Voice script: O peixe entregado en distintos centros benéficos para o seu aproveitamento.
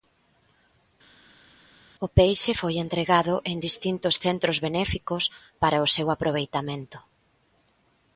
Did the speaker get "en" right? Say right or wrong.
right